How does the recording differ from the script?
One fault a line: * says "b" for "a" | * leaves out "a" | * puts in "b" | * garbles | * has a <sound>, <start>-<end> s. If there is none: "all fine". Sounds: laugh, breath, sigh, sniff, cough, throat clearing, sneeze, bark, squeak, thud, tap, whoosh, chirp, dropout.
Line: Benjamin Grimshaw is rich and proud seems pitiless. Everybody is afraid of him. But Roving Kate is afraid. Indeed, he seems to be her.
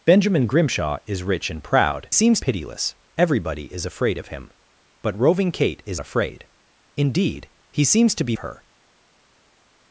all fine